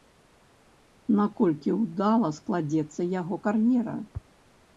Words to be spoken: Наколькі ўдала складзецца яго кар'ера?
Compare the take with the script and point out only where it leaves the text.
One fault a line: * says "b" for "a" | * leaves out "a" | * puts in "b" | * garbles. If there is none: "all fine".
all fine